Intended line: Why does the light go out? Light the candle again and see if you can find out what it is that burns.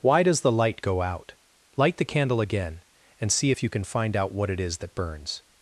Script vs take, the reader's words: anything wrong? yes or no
no